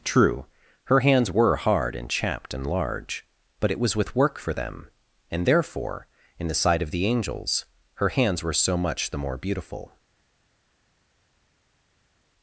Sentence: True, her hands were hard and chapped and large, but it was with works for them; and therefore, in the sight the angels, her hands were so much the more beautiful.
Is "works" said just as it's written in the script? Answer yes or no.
no